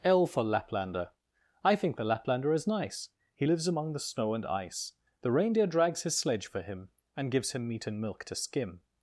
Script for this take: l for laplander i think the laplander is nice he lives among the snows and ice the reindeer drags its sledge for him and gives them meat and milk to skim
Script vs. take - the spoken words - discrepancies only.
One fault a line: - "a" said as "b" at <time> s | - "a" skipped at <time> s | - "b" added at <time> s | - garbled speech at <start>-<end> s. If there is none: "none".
- "snows" said as "snow" at 4.0 s
- "its" said as "his" at 6.0 s
- "them" said as "him" at 7.5 s